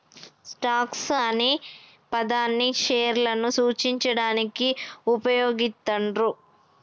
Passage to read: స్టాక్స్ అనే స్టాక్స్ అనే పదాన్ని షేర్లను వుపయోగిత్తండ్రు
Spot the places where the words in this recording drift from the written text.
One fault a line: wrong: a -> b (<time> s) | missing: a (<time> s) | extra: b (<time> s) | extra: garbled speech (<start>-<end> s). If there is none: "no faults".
missing: స్టాక్స్ అనే (1.5 s)
extra: సూచించడానికి (3.6 s)